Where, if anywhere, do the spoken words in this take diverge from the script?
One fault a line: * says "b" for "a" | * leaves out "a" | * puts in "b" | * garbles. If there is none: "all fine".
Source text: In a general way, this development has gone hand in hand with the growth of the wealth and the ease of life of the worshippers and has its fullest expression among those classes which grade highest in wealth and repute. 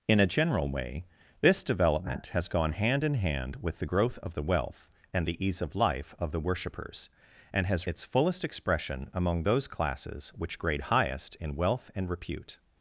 all fine